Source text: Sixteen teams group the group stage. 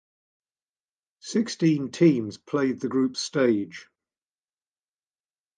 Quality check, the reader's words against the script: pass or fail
fail